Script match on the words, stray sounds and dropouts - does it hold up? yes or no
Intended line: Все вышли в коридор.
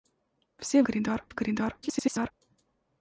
no